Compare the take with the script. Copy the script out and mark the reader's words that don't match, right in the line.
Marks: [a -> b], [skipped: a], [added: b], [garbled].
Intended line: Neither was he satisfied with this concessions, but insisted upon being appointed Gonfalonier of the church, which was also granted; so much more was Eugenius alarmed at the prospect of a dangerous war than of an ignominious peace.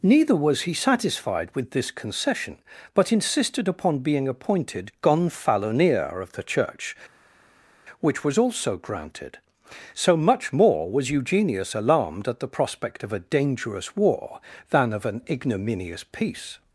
Neither was he satisfied with this [concessions, -> concession] but insisted upon being appointed Gonfalonier of the church, which was also granted; so much more was Eugenius alarmed at the prospect of a dangerous war than of an ignominious peace.